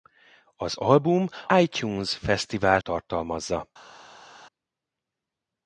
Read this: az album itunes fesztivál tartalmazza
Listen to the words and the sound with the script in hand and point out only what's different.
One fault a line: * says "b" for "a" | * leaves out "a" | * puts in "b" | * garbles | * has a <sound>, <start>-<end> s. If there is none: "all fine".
all fine